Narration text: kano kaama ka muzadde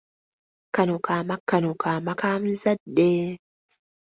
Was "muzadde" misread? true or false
false